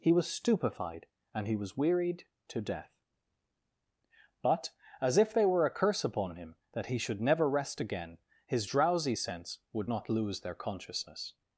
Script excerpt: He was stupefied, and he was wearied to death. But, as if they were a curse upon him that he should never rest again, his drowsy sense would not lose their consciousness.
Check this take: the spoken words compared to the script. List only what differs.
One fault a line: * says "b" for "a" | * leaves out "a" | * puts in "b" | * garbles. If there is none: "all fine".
all fine